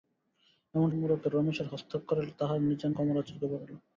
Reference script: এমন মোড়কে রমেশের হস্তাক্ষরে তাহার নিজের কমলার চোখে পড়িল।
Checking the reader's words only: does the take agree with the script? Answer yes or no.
yes